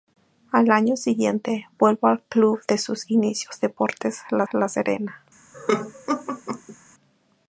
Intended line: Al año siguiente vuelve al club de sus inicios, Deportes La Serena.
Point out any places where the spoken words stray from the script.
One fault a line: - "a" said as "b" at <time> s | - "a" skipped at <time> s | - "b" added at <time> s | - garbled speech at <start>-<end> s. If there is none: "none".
- "La" added at 4.5 s